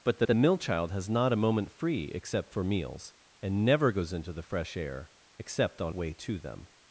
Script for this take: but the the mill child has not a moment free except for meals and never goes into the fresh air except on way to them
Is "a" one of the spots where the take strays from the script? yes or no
no